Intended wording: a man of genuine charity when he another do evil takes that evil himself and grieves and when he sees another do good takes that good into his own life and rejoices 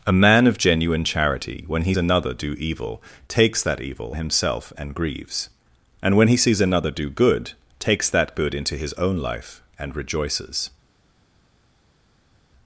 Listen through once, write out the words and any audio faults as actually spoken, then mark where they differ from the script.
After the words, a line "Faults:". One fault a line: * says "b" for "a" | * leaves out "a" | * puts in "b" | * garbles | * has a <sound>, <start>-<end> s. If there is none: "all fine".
a man of genuine charity when he another do evil takes that evil himself and grieves and when he sees another do good takes that good into his own life and rejoices
Faults:
all fine